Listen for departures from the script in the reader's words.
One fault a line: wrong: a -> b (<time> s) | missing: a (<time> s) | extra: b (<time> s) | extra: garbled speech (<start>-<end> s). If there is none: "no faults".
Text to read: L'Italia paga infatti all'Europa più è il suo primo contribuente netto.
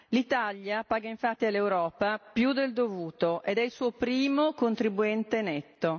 extra: del dovuto ed (2.5 s)